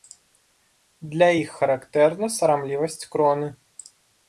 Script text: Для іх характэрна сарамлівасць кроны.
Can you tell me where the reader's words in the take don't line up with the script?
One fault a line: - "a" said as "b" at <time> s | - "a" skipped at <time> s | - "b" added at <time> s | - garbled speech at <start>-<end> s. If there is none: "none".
none